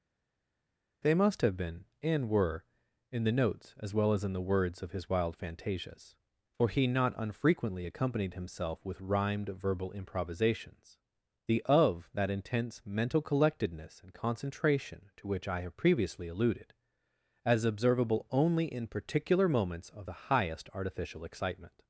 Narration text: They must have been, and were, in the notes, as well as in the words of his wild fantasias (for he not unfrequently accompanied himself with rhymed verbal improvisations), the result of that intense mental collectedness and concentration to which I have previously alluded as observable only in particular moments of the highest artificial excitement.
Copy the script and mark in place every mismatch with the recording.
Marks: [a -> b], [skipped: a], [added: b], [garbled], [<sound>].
They must have been, and were, in the notes, as well as in the words of his wild fantasias (for he not unfrequently accompanied himself with rhymed verbal improvisations), the [skipped: result] of that intense mental collectedness and concentration to which I have previously alluded as observable only in particular moments of the highest artificial excitement.